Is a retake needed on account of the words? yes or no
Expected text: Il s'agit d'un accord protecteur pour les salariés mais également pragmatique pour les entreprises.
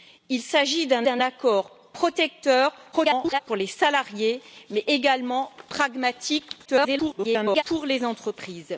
yes